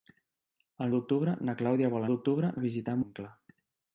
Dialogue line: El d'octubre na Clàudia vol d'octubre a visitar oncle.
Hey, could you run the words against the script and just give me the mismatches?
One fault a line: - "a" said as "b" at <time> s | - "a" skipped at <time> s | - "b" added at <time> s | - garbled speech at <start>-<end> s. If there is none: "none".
none